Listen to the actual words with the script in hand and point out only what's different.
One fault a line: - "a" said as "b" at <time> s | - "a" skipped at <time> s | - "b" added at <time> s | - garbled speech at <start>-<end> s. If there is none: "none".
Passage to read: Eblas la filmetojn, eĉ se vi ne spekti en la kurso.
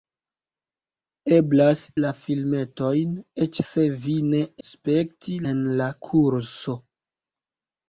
none